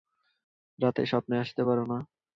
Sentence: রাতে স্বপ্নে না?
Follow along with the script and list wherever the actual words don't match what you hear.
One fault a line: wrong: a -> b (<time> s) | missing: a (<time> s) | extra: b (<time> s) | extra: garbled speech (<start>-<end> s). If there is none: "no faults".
extra: আসতে পারো (1.4 s)